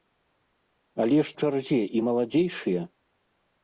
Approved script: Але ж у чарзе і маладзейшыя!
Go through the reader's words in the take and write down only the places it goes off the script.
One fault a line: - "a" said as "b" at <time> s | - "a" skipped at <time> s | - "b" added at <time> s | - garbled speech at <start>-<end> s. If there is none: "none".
none